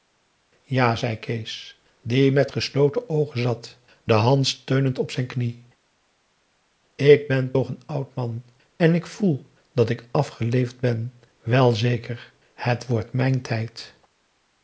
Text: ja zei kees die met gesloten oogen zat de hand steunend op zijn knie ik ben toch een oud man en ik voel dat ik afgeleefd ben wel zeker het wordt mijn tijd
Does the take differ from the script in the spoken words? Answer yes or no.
no